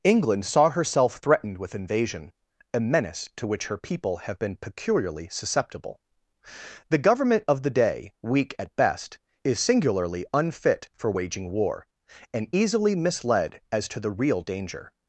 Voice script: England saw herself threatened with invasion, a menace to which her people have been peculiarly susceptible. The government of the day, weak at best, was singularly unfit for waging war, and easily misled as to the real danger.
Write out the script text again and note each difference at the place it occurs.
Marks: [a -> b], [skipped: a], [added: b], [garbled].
England saw herself threatened with invasion, a menace to which her people have been peculiarly susceptible. The government of the day, weak at best, [was -> is] singularly unfit for waging war, and easily misled as to the real danger.